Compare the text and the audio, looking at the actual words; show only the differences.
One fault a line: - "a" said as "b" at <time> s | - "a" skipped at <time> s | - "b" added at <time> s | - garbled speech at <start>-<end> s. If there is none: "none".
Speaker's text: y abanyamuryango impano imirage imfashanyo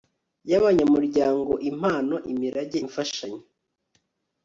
none